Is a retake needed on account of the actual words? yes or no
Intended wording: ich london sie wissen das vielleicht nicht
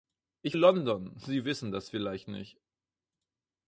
no